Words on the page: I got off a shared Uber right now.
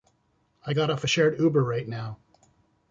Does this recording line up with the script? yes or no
yes